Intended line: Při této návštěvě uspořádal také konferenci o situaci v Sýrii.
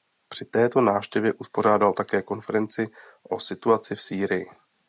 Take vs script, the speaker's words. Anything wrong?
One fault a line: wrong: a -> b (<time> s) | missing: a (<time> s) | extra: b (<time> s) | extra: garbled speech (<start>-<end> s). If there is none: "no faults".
no faults